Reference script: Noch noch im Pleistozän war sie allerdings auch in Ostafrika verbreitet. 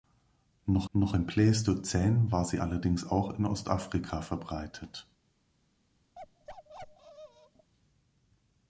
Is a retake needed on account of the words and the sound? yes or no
yes